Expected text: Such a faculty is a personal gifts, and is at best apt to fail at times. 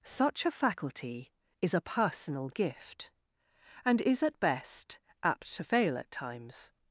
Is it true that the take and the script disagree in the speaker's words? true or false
true